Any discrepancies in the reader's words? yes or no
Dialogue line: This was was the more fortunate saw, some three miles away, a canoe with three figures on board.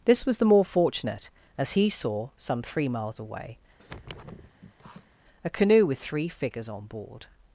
yes